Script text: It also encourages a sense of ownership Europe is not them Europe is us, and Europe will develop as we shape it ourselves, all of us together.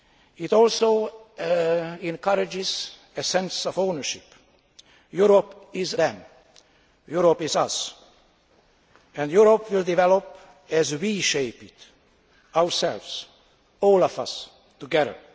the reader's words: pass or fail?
fail